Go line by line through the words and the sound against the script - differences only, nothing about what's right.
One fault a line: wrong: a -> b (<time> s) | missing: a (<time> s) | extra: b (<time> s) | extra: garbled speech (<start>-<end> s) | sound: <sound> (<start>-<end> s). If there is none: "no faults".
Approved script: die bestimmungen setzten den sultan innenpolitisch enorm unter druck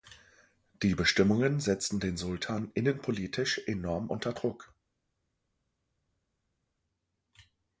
no faults